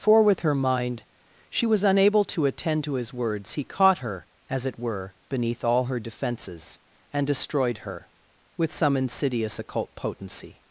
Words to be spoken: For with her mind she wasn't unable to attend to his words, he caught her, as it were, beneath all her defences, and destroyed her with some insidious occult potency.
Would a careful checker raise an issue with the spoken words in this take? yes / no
yes